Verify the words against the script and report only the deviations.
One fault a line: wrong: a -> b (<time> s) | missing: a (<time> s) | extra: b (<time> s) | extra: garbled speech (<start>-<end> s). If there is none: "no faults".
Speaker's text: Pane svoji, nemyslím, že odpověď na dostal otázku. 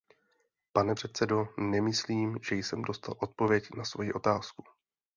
wrong: svoji -> předsedo (0.9 s)
extra: jsem dostal (2.5 s)
wrong: dostal -> svoji (3.8 s)